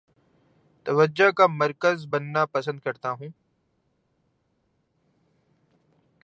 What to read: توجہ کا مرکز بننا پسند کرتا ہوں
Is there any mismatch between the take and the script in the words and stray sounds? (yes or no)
no